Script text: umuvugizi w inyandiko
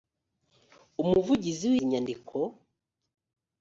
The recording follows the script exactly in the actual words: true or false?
true